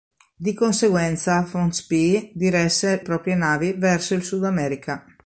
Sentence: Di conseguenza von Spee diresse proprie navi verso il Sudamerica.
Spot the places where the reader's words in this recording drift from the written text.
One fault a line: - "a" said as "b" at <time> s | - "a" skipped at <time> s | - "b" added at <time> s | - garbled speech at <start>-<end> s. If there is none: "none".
none